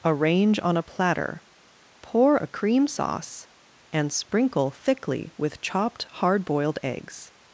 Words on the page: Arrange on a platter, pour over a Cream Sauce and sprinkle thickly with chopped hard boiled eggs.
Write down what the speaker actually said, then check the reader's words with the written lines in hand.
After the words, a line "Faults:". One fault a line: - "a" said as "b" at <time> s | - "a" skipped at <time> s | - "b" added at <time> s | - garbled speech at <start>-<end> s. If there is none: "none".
Arrange on a platter, pour a Cream Sauce and sprinkle thickly with chopped hard boiled eggs.
Faults:
- "over" skipped at 2.4 s